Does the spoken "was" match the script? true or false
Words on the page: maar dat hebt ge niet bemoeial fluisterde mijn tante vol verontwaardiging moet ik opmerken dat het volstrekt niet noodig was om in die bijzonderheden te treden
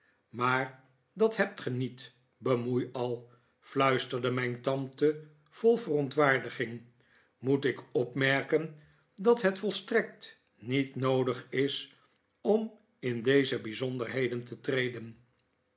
false